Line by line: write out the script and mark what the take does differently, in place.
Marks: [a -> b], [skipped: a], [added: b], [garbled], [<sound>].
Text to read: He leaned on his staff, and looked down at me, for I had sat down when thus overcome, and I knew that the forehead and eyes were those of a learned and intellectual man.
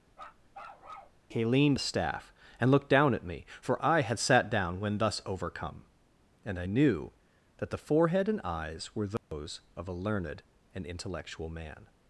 [bark] He leaned [skipped: on] his staff, and looked down at me, for I had sat down when thus overcome, and I knew that the forehead and eyes were those [dropout] of a learned and intellectual man.